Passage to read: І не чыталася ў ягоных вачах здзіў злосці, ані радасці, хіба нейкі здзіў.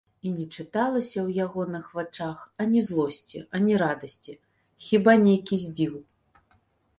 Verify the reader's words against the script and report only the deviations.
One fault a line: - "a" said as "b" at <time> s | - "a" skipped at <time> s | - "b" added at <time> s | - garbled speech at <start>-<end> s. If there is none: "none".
- "здзіў" said as "ані" at 2.6 s